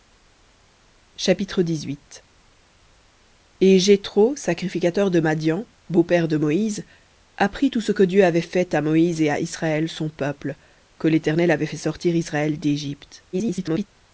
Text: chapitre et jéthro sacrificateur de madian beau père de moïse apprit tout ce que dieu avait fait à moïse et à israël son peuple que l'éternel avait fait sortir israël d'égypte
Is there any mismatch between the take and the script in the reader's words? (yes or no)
yes